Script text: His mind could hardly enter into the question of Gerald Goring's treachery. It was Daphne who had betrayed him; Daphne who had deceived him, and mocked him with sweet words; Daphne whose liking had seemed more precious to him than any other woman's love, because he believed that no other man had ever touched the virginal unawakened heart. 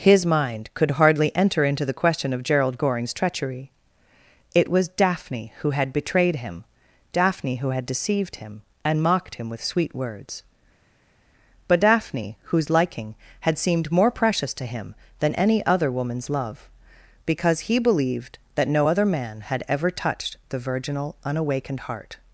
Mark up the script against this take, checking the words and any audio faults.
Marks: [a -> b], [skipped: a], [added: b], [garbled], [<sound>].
His mind could hardly enter into the question of Gerald Goring's treachery. It was Daphne who had betrayed him; Daphne who had deceived him, and mocked him with sweet words; [added: but] Daphne whose liking had seemed more precious to him than any other woman's love, because he believed that no other man had ever touched the virginal unawakened heart.